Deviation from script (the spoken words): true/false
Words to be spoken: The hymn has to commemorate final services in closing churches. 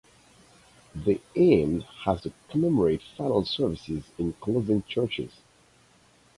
false